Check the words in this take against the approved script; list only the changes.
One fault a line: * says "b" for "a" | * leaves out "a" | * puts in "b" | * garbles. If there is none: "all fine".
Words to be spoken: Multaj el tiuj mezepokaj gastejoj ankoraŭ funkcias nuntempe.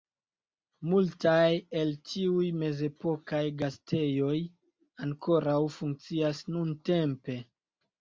all fine